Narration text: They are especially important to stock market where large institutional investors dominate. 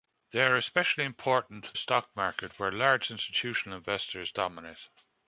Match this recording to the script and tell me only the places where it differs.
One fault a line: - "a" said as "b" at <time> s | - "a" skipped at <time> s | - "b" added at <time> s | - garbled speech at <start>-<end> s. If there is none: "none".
none